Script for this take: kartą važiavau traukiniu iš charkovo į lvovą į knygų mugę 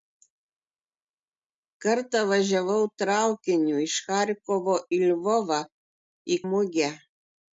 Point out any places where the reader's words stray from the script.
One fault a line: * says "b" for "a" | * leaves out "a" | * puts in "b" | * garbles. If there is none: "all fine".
* leaves out "knygų"